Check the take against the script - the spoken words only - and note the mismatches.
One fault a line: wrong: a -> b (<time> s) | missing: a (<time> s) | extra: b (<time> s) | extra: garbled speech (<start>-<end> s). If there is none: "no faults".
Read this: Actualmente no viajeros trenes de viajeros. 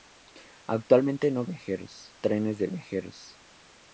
no faults